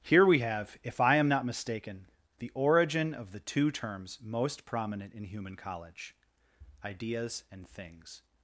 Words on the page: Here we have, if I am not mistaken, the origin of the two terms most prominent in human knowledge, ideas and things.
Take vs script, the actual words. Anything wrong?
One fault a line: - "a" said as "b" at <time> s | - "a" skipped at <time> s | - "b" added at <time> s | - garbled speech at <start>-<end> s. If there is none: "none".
- "knowledge" said as "college" at 5.6 s